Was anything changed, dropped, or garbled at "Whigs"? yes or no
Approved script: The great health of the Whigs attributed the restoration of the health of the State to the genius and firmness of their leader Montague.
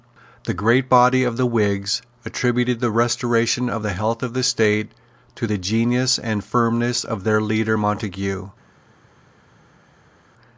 no